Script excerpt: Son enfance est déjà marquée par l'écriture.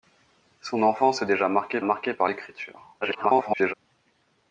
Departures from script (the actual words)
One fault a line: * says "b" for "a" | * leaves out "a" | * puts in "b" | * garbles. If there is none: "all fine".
* puts in "marquée"
* garbles